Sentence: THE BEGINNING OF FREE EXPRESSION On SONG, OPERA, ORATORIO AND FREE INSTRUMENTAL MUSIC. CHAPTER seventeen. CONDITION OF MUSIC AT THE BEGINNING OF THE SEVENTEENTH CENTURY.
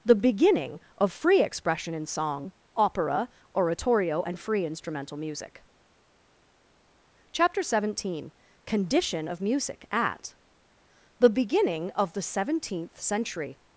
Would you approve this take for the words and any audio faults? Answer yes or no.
no